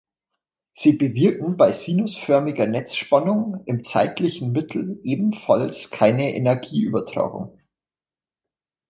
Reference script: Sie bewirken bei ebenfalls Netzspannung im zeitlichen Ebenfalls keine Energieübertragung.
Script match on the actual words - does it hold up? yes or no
no